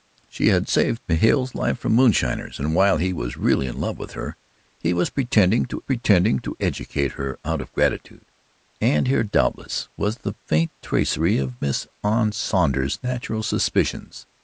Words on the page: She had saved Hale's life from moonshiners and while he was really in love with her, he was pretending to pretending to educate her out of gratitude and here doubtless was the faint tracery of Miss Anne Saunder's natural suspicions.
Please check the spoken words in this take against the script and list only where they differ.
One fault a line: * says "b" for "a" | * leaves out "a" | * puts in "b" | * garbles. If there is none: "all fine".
all fine